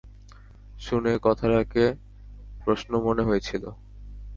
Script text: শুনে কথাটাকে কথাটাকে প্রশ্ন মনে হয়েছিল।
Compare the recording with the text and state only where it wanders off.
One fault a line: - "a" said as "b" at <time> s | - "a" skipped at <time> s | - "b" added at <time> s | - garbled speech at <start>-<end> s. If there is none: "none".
- "কথাটাকে" skipped at 1.8 s